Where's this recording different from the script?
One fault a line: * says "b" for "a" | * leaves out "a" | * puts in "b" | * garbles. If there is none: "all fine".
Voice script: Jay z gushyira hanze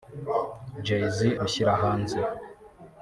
all fine